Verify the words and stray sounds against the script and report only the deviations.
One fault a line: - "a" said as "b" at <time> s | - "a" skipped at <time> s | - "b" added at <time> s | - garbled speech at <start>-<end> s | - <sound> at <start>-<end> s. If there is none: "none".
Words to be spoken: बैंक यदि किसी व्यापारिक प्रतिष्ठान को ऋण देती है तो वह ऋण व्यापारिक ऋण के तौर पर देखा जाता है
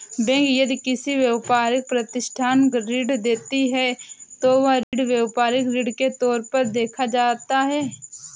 - "को" skipped at 2.7 s
- dropout at 4.8-4.9 s